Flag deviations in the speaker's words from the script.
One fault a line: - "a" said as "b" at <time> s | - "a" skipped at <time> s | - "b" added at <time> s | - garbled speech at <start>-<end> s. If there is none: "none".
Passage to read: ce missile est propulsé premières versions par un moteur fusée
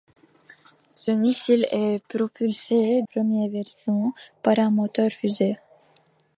none